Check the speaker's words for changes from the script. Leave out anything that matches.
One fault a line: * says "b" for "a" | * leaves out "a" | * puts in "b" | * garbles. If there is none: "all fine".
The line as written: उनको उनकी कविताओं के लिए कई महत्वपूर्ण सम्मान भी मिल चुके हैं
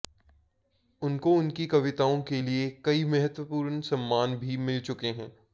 all fine